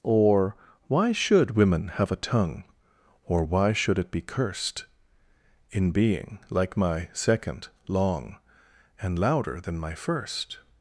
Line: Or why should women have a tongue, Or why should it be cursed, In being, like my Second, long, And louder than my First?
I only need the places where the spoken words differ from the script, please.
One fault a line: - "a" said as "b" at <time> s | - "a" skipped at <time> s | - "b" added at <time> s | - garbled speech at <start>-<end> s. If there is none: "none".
none